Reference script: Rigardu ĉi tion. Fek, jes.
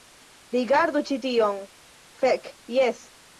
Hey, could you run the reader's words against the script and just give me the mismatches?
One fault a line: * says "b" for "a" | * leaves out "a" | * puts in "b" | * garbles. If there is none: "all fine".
all fine